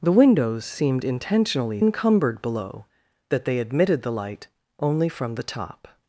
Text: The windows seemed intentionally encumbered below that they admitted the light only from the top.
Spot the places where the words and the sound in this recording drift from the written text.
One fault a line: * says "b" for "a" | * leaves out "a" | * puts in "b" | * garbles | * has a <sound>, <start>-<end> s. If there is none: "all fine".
all fine